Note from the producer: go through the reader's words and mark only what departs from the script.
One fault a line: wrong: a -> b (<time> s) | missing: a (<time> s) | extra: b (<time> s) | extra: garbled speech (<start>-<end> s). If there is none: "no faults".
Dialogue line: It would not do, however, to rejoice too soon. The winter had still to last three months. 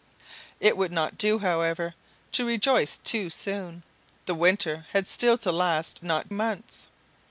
wrong: three -> not (6.0 s)